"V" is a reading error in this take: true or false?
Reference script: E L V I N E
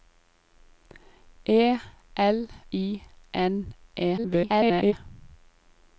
true